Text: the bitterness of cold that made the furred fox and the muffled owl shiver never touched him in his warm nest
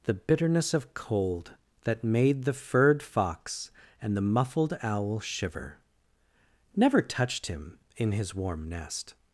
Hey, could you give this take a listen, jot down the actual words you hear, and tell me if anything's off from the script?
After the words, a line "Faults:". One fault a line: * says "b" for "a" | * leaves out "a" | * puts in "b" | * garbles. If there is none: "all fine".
the bitterness of cold that made the furred fox and the muffled owl shiver never touched him in his warm nest
Faults:
all fine